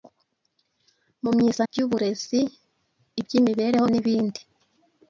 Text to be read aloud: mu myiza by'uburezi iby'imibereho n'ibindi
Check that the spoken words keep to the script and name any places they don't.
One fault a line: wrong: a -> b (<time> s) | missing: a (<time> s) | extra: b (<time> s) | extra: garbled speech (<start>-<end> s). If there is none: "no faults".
no faults